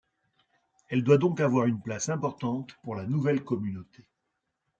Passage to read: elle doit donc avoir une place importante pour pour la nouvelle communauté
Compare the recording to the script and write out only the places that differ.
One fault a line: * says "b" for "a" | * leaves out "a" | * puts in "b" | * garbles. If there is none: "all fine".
* leaves out "pour"